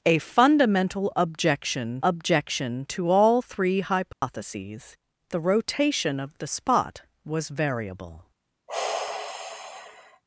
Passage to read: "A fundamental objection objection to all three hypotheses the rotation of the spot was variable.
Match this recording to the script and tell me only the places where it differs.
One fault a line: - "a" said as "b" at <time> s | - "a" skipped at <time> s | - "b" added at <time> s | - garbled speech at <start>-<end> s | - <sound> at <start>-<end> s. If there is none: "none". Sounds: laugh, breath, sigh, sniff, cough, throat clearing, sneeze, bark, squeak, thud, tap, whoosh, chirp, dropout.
- dropout at 4.1-4.2 s
- sigh at 8.7-10.2 s